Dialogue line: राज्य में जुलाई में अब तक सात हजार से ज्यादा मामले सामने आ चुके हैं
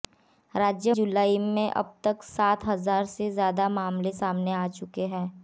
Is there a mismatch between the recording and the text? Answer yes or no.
yes